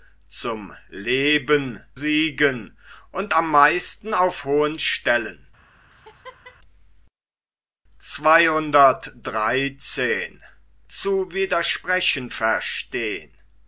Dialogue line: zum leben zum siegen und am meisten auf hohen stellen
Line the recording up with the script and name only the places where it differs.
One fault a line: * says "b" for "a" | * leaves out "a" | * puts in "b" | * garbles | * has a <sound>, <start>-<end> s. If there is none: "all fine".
* leaves out "zum"
* has a laugh, 5.9-6.6 s